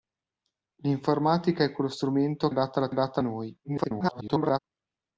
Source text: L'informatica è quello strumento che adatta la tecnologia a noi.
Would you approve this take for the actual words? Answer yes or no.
no